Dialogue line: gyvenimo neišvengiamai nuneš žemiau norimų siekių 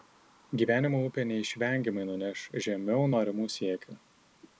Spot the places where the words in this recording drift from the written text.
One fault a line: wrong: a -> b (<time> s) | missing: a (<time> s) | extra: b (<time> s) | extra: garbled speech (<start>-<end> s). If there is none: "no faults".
extra: upė (1.1 s)